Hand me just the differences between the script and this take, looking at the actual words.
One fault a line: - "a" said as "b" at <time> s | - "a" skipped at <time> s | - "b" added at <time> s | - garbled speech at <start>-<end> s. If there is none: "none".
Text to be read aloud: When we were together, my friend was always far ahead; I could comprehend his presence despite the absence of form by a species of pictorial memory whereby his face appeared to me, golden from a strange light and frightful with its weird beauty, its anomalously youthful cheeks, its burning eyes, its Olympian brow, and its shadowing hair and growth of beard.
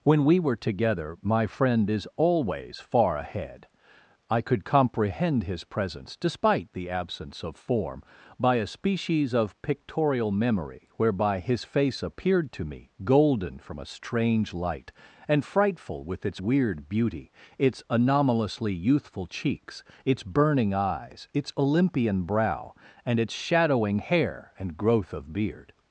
- "was" said as "is" at 1.9 s